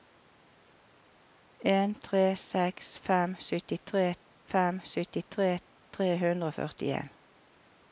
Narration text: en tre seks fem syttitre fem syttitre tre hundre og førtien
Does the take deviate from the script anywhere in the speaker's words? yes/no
no